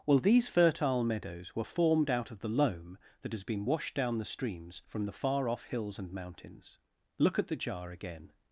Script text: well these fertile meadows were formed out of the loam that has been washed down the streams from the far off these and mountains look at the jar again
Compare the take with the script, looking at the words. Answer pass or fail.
fail